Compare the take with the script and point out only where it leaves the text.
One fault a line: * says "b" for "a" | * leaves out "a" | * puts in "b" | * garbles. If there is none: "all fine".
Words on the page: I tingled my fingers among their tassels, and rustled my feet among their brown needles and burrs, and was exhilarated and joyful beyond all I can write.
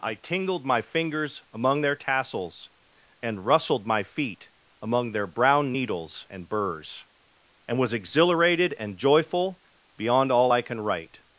all fine